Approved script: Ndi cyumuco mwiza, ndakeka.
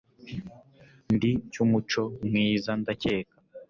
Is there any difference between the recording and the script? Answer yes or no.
no